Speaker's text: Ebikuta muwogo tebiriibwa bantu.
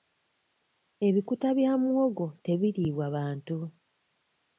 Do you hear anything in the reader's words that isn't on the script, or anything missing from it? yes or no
yes